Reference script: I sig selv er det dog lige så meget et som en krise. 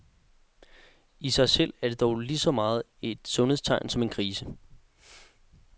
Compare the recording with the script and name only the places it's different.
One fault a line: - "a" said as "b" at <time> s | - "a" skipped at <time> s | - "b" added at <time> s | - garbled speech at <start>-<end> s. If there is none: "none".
- "sundhedstegn" added at 3.2 s